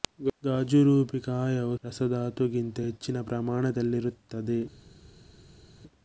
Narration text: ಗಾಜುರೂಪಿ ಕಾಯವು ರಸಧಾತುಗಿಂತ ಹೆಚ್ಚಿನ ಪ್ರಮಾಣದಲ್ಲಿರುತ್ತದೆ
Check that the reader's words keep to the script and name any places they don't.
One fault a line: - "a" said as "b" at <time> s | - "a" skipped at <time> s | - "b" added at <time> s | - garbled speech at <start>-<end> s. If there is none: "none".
none